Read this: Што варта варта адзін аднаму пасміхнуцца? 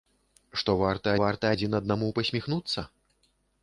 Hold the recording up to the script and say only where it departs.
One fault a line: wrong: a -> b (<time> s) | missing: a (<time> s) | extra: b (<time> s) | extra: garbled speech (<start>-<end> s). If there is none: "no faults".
no faults